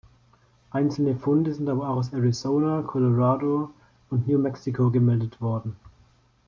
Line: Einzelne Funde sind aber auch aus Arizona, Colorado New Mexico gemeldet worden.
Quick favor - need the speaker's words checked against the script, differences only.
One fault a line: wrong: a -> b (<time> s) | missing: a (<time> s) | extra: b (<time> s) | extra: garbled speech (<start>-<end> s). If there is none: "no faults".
extra: und (4.1 s)